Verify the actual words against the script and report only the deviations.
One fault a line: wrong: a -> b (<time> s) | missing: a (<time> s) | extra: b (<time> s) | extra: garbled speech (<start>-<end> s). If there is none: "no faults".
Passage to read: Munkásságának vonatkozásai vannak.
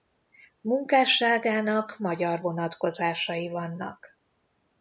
extra: magyar (2.0 s)